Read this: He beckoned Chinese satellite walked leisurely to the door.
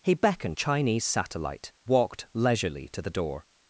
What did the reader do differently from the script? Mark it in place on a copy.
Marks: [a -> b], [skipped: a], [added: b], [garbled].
He beckoned Chinese satellite walked leisurely to the door.